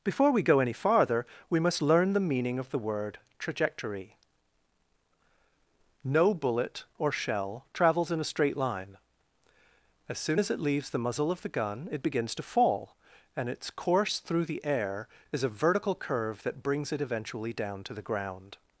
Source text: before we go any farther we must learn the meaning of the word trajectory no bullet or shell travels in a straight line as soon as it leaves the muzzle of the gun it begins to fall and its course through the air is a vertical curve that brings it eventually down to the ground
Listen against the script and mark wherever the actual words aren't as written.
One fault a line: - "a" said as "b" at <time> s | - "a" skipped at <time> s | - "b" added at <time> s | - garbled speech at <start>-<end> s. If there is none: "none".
none